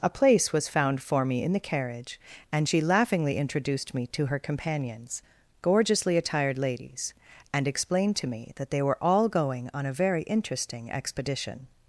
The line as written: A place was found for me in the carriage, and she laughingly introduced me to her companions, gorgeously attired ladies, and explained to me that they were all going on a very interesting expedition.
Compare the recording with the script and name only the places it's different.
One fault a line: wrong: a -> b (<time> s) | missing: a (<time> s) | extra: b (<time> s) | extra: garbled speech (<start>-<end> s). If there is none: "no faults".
no faults